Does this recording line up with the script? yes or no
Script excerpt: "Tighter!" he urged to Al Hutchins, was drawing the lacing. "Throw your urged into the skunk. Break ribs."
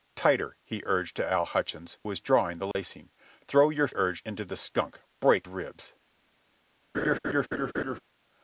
yes